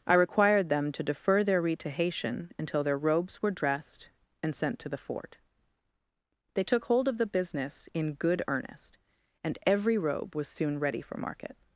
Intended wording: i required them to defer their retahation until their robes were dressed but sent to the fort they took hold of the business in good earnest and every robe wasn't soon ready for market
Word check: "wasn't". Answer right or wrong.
wrong